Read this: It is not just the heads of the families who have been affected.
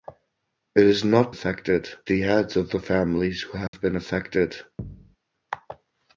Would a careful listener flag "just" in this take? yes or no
yes